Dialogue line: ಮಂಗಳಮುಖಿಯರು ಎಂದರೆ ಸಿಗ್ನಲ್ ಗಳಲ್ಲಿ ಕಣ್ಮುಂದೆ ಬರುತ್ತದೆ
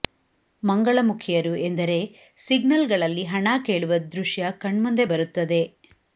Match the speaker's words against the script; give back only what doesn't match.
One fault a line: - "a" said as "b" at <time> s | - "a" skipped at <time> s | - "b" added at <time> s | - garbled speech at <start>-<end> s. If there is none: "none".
- "ಹಣ ಕೇಳುವ ದೃಶ್ಯ" added at 3.2 s